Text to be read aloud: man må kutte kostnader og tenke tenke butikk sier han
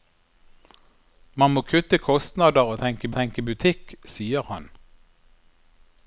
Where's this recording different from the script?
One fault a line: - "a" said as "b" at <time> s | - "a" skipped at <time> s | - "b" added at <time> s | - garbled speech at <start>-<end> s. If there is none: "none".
none